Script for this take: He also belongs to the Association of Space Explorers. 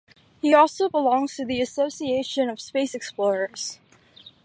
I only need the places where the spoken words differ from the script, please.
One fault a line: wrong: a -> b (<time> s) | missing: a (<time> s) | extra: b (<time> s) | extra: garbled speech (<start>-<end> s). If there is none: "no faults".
no faults